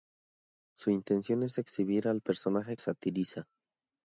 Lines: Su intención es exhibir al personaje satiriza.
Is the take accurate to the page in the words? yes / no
yes